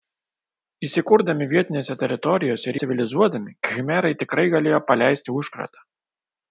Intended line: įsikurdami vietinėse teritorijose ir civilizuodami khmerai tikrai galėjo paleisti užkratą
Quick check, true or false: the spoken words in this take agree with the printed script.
true